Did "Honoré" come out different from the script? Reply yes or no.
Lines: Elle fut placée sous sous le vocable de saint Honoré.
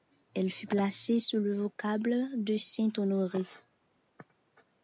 no